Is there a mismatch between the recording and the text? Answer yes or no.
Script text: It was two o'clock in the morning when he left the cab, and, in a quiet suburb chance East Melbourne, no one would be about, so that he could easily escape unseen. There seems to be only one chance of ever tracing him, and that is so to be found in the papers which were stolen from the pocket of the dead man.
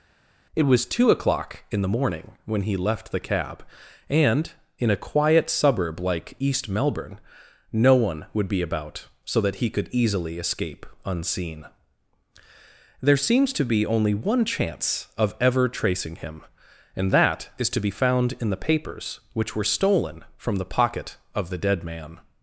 yes